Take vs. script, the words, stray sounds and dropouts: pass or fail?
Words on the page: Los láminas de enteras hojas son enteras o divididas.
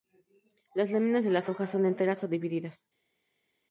fail